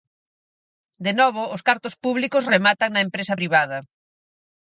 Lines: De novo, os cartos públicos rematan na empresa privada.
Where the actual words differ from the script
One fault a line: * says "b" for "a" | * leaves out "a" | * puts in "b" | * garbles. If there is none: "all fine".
all fine